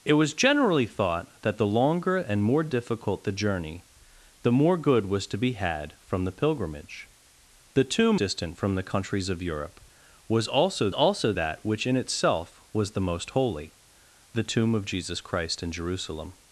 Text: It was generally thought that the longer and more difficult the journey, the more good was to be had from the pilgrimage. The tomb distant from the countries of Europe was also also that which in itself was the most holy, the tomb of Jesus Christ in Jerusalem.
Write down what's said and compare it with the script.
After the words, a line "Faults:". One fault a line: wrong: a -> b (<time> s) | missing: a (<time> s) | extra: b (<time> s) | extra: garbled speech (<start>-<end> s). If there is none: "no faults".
It was generally thought that the longer and more difficult the journey, the more good was to be had from the pilgrimage. The tomb distant from the countries of Europe was also also that which in itself was the most holy, the tomb of Jesus Christ in Jerusalem.
Faults:
no faults